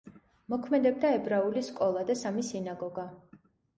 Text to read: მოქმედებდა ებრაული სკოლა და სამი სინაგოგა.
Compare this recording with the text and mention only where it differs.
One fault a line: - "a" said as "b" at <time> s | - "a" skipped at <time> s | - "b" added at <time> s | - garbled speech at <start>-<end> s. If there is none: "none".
none